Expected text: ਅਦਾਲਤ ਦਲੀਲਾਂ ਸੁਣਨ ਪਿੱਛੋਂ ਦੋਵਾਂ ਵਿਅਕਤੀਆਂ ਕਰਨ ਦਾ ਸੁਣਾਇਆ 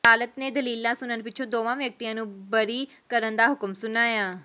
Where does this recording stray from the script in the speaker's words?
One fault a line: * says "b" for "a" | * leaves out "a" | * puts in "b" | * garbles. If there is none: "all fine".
* puts in "ਨੇ"
* puts in "ਨੂੰ ਬਰੀ"
* puts in "ਹੁਕਮ"